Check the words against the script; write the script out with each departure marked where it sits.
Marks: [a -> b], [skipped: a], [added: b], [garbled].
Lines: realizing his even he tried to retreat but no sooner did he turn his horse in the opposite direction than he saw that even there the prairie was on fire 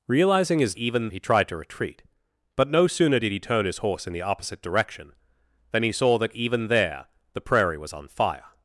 realizing his even he tried to retreat but no sooner did he turn his horse in the opposite direction than he saw that even there the prairie was on fire